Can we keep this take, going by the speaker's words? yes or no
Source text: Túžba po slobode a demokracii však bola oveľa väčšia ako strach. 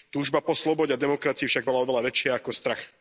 yes